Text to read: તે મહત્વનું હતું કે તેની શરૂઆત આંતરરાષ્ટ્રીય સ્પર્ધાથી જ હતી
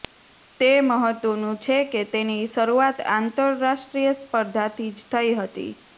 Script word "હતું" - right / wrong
wrong